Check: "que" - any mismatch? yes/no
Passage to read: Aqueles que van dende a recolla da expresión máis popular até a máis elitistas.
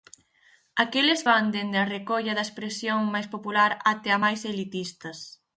yes